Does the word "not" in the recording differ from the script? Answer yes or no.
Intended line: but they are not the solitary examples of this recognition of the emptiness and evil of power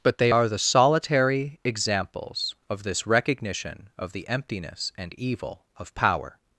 yes